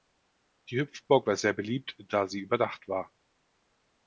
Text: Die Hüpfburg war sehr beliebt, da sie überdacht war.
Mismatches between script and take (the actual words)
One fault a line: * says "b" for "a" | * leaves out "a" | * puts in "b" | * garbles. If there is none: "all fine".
all fine